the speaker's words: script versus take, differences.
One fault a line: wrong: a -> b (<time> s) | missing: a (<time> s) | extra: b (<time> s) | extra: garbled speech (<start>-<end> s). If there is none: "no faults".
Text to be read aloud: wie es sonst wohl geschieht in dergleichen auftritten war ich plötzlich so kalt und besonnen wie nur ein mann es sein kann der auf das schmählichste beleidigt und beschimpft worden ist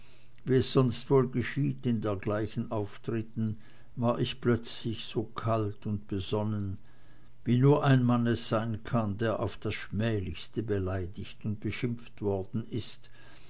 no faults